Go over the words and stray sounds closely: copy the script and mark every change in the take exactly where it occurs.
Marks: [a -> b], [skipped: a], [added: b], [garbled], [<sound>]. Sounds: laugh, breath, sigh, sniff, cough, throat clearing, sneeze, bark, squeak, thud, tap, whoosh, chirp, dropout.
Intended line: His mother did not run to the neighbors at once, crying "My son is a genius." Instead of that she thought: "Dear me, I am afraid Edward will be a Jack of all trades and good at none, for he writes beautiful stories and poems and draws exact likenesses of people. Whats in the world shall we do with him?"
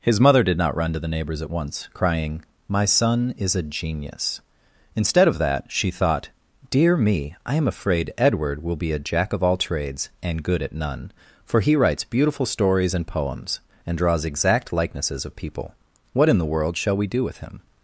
His mother did not run to the neighbors at once, crying "My son is a genius." Instead of that she thought: "Dear me, I am afraid Edward will be a Jack of all trades and good at none, for he writes beautiful stories and poems and draws exact likenesses of people. [Whats -> What] in the world shall we do with him?"